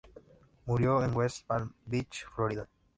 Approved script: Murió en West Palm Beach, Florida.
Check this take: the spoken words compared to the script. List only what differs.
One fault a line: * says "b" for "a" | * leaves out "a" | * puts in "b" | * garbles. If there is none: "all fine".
all fine